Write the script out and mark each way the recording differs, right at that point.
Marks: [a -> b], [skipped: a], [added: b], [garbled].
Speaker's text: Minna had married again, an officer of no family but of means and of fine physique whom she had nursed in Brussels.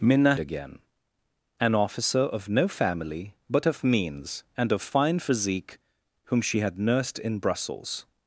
Minna [skipped: had married] again, an officer of no family but of means and of fine physique whom she had nursed in Brussels.